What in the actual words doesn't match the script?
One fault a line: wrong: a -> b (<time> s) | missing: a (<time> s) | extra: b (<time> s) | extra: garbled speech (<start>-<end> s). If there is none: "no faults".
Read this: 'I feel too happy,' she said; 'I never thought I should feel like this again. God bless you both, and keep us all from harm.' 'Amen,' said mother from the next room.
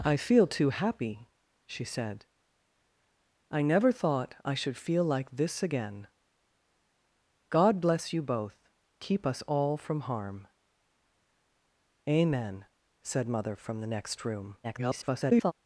missing: and (8.6 s)
extra: garbled speech (14.6-15.5 s)